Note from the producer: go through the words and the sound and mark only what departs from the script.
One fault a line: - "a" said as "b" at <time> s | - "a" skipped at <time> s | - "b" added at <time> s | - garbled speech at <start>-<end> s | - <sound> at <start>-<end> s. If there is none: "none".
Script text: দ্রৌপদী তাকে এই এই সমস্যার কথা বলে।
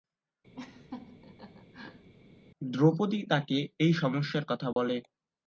- laugh at 0.6-2.1 s
- "এই" skipped at 3.9 s
- dropout at 4.7-4.8 s